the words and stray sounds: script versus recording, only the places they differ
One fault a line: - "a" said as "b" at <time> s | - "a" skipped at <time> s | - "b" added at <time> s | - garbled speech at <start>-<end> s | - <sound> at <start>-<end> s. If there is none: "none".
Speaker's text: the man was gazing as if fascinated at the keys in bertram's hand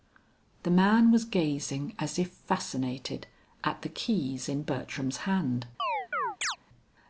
- chirp at 5.8-6.6 s